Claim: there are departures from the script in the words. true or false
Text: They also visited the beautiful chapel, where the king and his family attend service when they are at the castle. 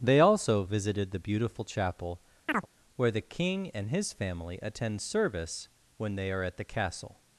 false